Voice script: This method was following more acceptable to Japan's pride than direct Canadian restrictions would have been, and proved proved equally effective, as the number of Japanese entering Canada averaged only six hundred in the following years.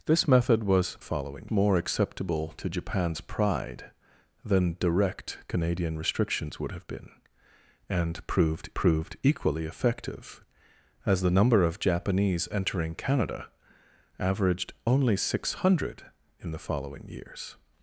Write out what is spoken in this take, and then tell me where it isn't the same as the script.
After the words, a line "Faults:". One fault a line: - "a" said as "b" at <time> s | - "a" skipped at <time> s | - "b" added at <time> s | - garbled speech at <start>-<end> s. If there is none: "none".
This method was following more acceptable to Japan's pride than direct Canadian restrictions would have been, and proved proved equally effective, as the number of Japanese entering Canada averaged only six hundred in the following years.
Faults:
none